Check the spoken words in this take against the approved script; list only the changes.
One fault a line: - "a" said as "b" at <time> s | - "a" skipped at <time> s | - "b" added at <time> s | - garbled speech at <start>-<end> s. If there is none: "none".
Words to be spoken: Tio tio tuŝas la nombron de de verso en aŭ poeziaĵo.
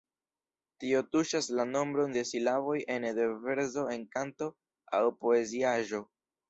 - "tio" skipped at 1.0 s
- "silaboj ene" added at 2.3 s
- "kanto" added at 4.2 s